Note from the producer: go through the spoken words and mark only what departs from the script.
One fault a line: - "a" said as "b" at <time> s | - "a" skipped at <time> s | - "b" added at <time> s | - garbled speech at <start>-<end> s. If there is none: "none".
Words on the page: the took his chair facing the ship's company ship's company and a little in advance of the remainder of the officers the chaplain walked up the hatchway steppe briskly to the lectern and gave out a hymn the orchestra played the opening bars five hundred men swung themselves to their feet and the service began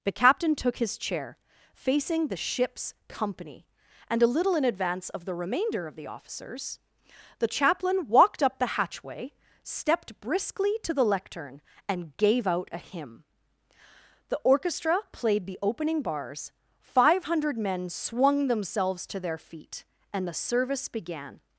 - "captain" added at 0.1 s
- "ship's company" skipped at 3.7 s
- "steppe" said as "stepped" at 9.6 s